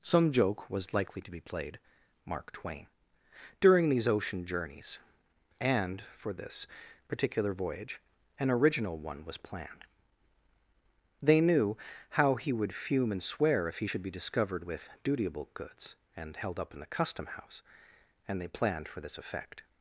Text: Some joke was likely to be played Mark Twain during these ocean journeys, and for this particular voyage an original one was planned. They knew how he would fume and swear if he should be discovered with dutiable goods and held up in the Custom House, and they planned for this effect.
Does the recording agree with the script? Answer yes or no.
yes